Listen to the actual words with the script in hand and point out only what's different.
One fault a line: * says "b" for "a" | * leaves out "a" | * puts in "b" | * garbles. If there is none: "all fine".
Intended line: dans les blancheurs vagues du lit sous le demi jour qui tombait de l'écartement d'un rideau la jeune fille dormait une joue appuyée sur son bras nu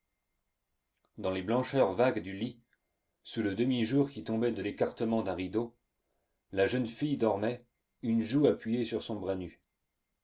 all fine